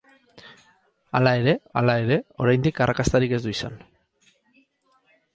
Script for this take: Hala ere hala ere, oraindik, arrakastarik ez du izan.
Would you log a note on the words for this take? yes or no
no